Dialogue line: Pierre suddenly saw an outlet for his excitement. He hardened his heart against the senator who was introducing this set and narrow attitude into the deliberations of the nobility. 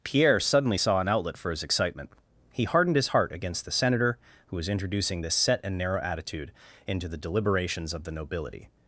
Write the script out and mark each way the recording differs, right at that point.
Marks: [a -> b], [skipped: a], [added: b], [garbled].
Pierre suddenly saw an outlet for his excitement. He hardened his heart against the senator who was introducing this set and narrow attitude into the deliberations of the nobility.